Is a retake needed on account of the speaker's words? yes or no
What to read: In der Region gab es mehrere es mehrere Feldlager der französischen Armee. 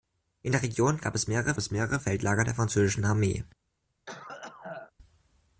no